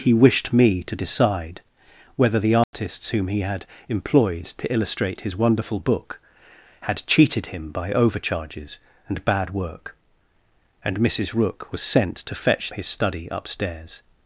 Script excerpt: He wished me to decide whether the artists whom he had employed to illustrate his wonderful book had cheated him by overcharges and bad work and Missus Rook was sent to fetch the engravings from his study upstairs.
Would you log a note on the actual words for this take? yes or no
yes